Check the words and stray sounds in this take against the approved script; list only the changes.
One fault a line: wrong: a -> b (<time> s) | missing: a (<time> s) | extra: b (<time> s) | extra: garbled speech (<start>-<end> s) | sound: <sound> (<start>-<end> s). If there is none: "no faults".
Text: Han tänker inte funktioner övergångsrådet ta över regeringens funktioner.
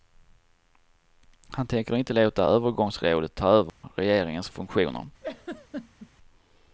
wrong: funktioner -> låta (2.1 s)
sound: dropout (3.7-3.8 s)
sound: laugh (5.2-6.1 s)